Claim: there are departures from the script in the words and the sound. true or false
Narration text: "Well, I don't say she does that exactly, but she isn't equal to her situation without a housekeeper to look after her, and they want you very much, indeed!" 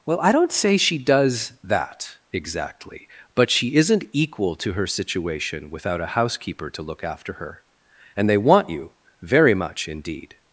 false